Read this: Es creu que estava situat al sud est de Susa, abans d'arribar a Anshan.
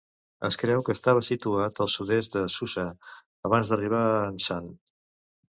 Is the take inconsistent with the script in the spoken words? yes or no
no